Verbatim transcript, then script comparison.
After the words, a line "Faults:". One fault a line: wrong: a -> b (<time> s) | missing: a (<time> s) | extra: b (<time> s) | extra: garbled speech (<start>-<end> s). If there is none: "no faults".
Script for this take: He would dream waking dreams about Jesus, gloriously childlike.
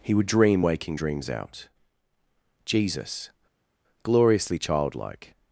He would dream waking dreams out Jesus, gloriously childlike.
Faults:
wrong: about -> out (1.3 s)